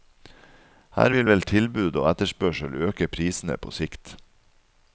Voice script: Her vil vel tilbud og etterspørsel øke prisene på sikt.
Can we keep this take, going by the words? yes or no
yes